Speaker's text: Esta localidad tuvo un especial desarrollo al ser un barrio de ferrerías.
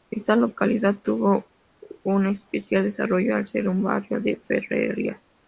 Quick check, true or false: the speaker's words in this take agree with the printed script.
true